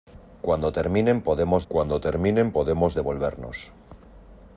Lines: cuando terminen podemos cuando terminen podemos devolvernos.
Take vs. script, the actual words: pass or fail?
pass